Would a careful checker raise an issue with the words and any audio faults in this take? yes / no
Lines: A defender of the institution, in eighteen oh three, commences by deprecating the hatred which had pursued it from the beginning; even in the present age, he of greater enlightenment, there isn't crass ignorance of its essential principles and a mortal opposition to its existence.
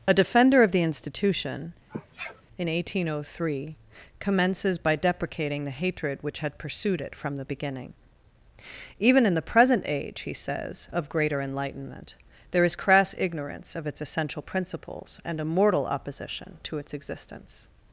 yes